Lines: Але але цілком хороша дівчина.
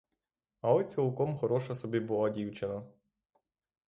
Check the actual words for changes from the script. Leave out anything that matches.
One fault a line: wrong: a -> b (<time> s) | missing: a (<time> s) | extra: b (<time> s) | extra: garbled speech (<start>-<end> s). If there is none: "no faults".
missing: але (0.8 s)
extra: собі була (1.7 s)